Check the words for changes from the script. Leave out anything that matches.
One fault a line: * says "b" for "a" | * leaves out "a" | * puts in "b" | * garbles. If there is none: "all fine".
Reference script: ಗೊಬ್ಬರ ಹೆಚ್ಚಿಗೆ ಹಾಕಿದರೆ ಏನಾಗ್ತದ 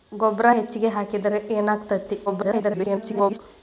* garbles